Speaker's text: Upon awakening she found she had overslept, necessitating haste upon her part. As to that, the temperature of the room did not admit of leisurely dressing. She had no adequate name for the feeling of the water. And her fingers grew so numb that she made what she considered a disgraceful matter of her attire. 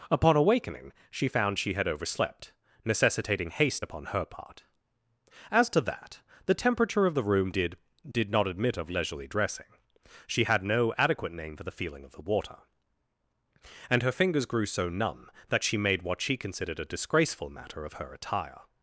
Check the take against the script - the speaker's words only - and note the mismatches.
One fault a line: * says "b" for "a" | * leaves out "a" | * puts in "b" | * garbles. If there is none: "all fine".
* puts in "did"